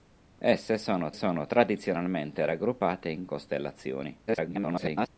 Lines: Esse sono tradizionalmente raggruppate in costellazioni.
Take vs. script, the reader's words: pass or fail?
fail